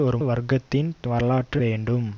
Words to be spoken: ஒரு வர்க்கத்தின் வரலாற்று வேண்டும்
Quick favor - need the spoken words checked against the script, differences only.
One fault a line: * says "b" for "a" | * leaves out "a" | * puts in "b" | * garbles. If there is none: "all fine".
all fine